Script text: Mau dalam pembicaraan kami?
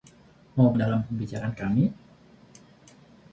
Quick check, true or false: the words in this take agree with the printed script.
true